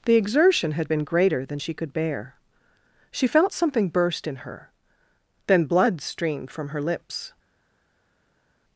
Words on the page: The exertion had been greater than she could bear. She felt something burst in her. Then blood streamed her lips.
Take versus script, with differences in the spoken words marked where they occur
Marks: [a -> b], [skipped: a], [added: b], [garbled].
The exertion had been greater than she could bear. She felt something burst in her. Then blood streamed [added: from] her lips.